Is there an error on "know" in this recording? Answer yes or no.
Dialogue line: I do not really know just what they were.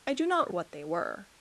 yes